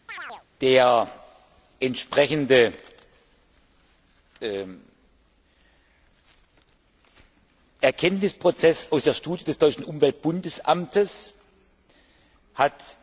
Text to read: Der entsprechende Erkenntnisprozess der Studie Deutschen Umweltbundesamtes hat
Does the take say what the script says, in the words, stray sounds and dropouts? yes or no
no